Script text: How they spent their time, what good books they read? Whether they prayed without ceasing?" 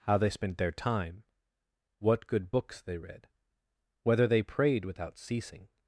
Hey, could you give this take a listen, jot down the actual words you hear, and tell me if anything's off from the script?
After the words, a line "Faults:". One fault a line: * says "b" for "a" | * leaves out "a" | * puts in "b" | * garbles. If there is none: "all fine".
How they spent their time, what good books they read? Whether they prayed without ceasing?"
Faults:
all fine